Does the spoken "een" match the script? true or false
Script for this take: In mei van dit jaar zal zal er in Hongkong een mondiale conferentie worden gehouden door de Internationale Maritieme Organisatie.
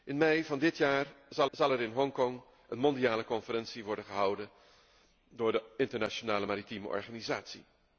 true